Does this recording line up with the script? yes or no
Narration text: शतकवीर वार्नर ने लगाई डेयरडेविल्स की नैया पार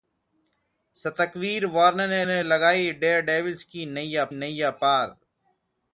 no